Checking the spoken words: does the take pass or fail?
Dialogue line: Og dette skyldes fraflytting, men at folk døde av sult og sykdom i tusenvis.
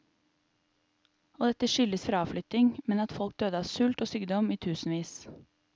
pass